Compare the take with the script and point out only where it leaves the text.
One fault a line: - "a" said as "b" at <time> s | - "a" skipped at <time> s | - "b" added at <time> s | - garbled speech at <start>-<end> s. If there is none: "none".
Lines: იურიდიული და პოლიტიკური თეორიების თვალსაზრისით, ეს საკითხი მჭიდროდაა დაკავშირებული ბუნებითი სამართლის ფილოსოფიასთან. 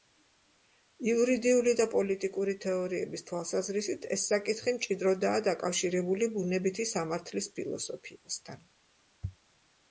none